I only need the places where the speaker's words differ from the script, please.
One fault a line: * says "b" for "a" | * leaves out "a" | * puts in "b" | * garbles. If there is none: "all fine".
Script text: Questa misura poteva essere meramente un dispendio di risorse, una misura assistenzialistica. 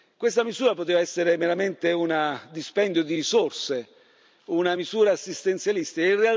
all fine